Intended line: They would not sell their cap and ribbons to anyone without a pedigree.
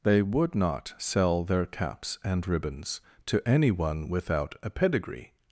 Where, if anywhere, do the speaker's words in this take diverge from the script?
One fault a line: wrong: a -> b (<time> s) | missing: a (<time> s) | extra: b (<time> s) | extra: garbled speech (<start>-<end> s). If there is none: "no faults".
wrong: cap -> caps (1.7 s)